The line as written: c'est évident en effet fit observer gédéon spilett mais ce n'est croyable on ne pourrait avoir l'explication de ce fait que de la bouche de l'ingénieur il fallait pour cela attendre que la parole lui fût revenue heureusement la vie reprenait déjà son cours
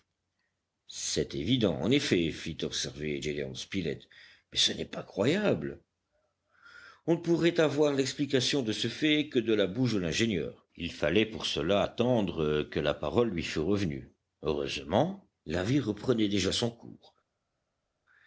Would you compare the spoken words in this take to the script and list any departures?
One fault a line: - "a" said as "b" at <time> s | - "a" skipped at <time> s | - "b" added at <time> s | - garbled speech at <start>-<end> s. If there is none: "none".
- "pas" added at 4.8 s